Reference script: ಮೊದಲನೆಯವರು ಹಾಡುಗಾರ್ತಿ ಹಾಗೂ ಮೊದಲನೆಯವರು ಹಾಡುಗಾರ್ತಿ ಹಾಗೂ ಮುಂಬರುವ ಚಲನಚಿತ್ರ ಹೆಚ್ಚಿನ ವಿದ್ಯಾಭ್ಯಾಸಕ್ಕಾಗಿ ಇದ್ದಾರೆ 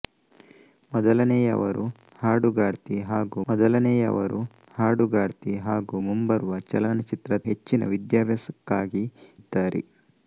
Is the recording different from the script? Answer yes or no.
no